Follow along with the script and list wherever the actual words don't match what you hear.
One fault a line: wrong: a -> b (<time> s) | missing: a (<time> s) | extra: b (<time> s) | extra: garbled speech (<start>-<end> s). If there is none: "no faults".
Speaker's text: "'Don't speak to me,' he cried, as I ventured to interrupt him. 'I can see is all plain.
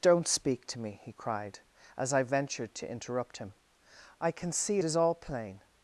no faults